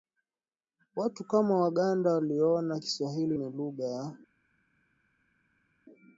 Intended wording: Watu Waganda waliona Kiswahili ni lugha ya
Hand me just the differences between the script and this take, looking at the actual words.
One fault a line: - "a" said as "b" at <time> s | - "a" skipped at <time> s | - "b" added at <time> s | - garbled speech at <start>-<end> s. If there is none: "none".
- "kama" added at 1.2 s